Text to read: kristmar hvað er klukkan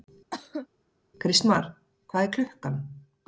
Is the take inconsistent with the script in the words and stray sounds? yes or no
yes